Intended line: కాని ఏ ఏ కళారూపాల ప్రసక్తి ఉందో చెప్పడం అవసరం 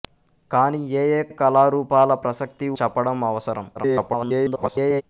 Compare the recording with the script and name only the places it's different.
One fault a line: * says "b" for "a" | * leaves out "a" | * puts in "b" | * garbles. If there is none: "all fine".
* puts in "ఏ"
* leaves out "ఉందో"
* garbles